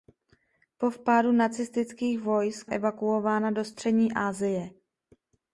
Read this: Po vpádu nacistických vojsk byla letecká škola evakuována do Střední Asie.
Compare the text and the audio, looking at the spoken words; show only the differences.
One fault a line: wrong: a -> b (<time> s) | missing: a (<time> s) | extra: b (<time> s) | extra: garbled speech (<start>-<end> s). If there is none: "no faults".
missing: byla letecká škola (2.7 s)